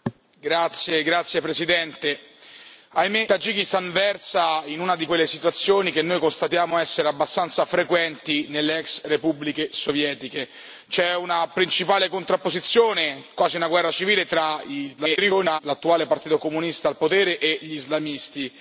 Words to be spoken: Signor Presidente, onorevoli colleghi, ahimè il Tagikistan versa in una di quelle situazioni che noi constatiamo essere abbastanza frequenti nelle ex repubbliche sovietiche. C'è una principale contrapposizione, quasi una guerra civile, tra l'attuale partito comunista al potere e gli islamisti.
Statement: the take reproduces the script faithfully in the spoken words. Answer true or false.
false